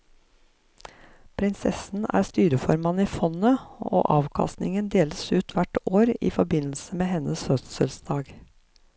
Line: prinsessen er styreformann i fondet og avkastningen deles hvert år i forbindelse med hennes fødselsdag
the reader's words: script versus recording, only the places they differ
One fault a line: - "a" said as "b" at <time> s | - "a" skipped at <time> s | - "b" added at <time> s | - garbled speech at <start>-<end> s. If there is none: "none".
- "ut" added at 5.3 s